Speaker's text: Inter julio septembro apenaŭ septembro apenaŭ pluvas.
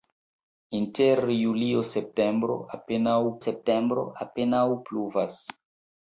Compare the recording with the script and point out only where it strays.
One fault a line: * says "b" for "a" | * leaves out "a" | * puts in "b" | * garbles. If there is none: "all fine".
all fine